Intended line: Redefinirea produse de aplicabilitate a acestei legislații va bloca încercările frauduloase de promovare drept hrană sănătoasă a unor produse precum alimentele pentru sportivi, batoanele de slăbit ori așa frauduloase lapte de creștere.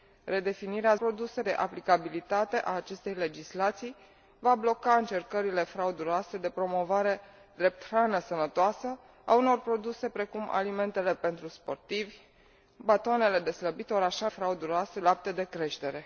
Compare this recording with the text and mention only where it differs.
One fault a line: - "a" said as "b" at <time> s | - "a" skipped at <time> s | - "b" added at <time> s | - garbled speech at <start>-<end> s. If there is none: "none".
none